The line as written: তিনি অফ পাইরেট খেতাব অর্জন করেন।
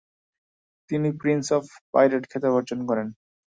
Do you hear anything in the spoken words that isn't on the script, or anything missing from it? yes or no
yes